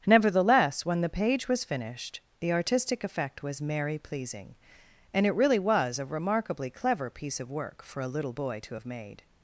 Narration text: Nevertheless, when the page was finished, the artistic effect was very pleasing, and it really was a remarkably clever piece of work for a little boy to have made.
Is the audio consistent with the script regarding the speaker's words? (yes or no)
no